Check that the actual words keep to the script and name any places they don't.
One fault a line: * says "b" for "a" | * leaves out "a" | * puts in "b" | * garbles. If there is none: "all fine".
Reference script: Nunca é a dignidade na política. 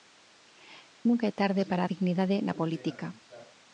* puts in "tarde para"